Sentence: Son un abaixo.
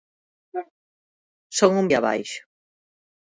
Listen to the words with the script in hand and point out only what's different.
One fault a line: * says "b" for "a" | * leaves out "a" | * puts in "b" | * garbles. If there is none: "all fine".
all fine